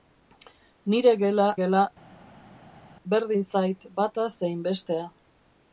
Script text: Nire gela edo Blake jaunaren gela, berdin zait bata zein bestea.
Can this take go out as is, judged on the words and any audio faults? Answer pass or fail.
fail